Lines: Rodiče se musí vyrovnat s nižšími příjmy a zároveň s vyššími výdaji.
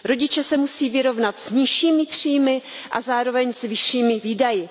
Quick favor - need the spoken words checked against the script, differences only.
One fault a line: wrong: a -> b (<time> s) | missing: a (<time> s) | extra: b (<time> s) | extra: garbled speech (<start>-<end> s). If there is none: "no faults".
no faults